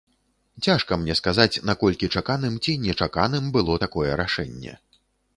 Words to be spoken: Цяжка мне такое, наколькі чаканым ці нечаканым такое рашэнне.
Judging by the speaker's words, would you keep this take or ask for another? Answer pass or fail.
fail